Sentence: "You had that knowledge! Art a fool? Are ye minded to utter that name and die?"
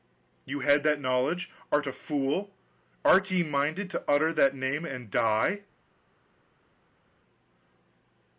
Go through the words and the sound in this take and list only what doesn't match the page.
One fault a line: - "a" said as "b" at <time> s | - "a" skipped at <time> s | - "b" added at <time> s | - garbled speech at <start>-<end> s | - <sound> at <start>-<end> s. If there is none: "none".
none